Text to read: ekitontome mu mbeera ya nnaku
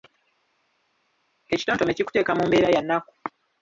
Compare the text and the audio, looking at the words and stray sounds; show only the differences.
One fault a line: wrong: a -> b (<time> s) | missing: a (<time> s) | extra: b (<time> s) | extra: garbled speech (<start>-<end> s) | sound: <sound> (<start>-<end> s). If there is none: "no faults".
extra: kikuteeka (2.0 s)